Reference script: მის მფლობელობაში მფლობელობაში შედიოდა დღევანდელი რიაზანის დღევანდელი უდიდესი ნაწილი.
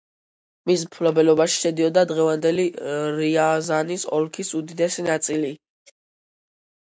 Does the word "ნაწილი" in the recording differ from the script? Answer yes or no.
no